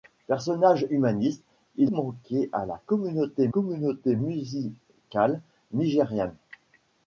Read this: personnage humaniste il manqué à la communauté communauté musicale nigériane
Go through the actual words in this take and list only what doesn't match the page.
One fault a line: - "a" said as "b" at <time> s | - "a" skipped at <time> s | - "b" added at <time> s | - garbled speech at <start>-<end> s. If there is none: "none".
none